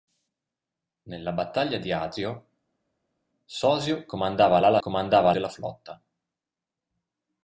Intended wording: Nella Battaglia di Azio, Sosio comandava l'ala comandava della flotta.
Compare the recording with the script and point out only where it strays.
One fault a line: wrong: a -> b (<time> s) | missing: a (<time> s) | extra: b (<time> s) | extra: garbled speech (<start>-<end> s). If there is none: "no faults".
no faults